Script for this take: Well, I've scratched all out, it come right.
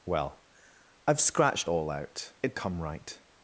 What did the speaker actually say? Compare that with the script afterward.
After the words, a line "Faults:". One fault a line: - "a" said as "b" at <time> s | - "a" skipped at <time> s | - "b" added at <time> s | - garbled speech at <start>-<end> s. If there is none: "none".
Well, I've scratched all out, it come right.
Faults:
none